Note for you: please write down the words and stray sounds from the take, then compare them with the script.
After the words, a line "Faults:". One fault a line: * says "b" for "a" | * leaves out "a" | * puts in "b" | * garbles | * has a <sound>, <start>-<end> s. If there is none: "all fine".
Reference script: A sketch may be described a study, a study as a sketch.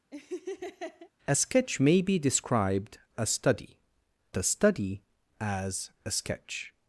A sketch may be described a study, a study as a sketch.
Faults:
* has a laugh, 0.1-1.1 s